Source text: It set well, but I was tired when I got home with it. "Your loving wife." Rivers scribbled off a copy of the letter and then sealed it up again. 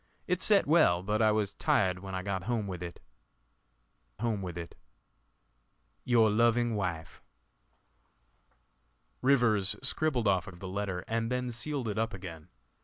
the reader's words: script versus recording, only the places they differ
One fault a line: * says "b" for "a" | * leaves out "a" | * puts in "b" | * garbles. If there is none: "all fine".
* puts in "home with it"
* leaves out "copy"